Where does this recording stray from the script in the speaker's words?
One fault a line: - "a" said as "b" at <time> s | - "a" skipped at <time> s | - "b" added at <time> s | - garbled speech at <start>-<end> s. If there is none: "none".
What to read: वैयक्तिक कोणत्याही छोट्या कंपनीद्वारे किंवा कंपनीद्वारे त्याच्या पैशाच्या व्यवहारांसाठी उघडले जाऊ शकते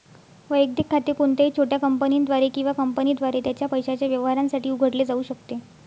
- "खाते" added at 0.9 s